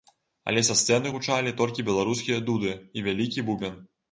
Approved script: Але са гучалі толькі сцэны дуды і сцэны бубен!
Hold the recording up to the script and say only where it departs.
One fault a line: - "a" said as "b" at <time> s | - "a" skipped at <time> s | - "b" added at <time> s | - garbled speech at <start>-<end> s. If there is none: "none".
- "сцэны" added at 0.8 s
- "сцэны" said as "беларускія" at 1.9 s
- "сцэны" said as "вялікі" at 3.1 s